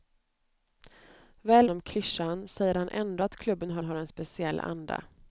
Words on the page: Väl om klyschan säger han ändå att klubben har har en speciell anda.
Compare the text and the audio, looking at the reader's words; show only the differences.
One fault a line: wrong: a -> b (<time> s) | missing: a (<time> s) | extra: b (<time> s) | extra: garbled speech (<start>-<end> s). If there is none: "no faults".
no faults